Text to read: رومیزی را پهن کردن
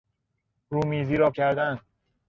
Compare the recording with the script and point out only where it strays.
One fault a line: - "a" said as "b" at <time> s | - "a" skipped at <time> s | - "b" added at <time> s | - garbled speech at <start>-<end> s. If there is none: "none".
- "پهن" skipped at 1.3 s